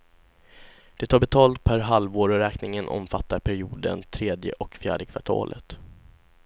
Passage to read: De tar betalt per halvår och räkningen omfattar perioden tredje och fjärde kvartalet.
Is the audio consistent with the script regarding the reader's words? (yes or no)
yes